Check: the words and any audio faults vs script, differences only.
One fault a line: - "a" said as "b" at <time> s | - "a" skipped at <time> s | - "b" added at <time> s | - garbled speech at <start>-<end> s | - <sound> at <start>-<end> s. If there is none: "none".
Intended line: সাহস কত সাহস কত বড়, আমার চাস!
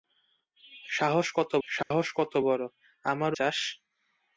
- dropout at 1.8-1.9 s